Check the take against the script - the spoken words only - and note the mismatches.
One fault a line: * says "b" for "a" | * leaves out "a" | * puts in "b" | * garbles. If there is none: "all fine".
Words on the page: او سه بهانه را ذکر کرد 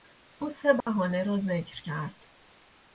all fine